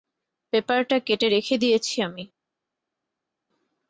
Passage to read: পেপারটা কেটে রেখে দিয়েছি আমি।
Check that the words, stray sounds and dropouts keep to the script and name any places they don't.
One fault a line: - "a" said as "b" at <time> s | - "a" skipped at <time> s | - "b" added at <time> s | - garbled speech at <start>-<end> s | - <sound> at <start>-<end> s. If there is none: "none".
none